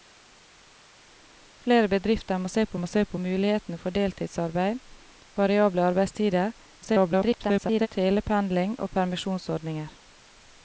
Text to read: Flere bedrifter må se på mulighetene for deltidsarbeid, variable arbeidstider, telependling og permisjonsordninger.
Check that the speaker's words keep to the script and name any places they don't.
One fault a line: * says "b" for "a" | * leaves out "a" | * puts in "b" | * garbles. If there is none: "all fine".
* puts in "må se på"
* garbles